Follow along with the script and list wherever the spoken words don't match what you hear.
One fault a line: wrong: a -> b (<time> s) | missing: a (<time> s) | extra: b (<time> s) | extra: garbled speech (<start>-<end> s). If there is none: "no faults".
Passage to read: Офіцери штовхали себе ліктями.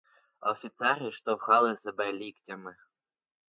no faults